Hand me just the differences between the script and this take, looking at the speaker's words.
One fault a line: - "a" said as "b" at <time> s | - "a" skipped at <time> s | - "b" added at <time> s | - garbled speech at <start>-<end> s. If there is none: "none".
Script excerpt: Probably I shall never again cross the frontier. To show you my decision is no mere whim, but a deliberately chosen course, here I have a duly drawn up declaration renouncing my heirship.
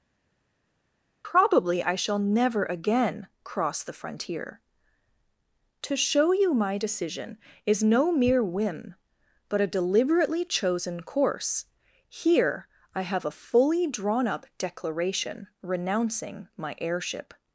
- "duly" said as "fully" at 13.3 s